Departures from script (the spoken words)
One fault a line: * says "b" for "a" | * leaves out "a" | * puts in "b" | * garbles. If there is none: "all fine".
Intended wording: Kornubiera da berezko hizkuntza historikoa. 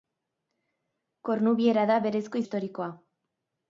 * leaves out "hizkuntza"